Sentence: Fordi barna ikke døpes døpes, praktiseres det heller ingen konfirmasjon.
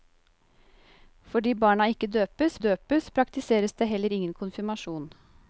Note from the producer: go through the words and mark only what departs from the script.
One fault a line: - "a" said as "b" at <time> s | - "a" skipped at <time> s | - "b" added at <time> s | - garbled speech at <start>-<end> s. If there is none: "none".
none